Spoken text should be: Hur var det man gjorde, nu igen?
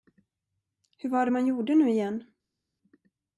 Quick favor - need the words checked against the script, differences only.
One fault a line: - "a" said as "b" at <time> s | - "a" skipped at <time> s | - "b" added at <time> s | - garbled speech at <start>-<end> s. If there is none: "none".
none